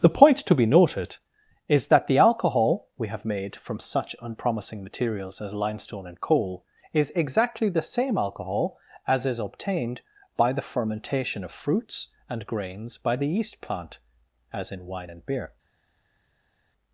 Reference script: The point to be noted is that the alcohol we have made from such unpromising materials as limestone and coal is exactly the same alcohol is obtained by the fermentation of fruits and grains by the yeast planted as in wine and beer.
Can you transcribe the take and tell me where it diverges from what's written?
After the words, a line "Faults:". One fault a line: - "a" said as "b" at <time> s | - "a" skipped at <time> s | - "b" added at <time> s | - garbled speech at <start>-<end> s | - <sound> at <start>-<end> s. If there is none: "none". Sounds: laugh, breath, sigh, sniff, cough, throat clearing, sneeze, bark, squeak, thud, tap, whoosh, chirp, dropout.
The point to be noted is that the alcohol we have made from such unpromising materials as limestone and coal is exactly the same alcohol as is obtained by the fermentation of fruits and grains by the yeast plant as in wine and beer.
Faults:
- "as" added at 9.1 s
- "planted" said as "plant" at 13.6 s